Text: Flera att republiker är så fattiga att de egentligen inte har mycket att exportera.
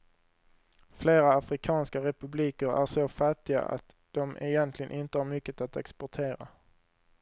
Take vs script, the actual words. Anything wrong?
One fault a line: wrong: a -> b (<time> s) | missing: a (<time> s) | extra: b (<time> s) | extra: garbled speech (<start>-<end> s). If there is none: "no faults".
wrong: att -> afrikanska (1.3 s)